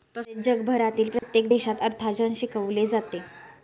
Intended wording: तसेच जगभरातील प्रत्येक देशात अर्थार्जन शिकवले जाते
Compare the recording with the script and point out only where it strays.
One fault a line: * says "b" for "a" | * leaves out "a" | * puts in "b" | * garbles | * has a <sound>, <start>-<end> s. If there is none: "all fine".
* has a dropout, 1.2-1.2 s